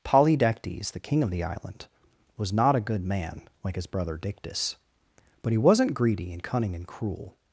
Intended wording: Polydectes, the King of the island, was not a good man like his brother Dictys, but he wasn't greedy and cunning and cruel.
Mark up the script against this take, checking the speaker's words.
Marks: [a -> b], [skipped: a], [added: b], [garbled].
Polydectes, the King of the island, was not a good man like his brother Dictys, but he wasn't greedy and cunning and cruel.